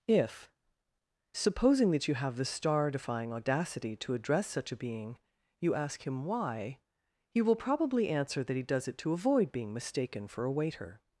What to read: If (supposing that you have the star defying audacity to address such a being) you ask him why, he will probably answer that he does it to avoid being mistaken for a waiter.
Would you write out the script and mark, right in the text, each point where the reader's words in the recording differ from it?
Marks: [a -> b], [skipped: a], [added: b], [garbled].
If (supposing that you have the star defying audacity to address such a being) you ask him why, he will probably answer that he does it to avoid being mistaken for a waiter.